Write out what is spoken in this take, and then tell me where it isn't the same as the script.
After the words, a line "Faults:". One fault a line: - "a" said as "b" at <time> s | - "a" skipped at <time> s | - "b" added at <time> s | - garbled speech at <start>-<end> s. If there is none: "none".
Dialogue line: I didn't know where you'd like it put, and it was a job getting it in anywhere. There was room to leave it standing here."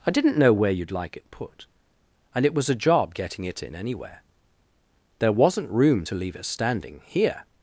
I didn't know where you'd like it put, and it was a job getting it in anywhere. There wasn't room to leave it standing here."
Faults:
- "was" said as "wasn't" at 5.3 s